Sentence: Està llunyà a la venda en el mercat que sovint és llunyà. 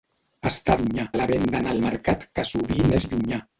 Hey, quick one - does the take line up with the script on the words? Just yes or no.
yes